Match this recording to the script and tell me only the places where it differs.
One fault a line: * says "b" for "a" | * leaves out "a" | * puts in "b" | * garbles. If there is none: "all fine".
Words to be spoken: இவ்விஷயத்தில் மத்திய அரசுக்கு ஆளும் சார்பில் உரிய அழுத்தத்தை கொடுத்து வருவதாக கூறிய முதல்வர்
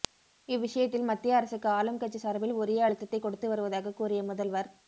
* puts in "கட்சி"